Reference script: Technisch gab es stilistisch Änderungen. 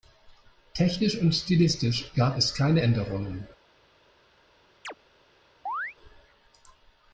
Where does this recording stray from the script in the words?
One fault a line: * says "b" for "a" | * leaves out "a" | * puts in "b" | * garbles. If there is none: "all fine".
* puts in "und stilistisch"
* says "keine" for "stilistisch"